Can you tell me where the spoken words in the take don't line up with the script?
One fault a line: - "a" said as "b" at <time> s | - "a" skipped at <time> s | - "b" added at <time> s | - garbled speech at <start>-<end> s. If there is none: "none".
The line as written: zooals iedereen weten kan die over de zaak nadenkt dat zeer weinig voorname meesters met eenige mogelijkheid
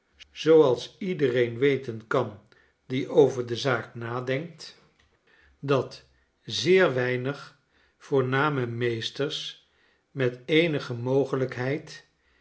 none